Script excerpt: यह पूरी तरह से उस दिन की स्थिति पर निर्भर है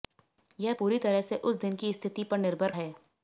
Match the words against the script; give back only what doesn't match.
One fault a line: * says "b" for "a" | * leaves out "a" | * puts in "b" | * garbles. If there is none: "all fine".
all fine